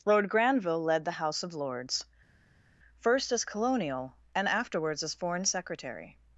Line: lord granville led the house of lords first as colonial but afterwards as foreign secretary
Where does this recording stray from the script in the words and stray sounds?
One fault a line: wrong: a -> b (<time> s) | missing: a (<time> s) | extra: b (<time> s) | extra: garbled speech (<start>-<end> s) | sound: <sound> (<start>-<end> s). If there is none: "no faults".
wrong: but -> and (4.3 s)